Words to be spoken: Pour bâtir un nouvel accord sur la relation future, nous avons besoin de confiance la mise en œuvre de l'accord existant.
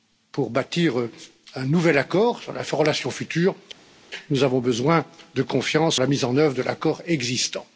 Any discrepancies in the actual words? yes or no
no